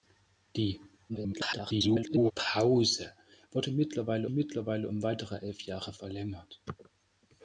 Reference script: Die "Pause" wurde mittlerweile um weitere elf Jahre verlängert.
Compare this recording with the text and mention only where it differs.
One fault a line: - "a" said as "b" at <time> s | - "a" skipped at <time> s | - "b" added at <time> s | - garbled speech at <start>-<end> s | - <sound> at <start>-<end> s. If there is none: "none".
- garbled speech at 1.1-2.3 s
- "mittlerweile" added at 4.3 s